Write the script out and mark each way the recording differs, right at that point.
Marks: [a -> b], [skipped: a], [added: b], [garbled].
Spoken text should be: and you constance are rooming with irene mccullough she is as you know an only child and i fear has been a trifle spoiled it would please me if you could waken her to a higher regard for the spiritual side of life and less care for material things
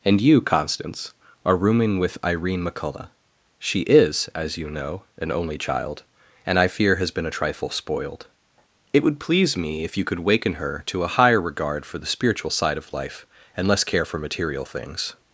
and you constance are rooming with irene mccullough she is as you know an only child and i fear has been a trifle spoiled it would please me if you could waken her to a higher regard for the spiritual side of life and less care for material things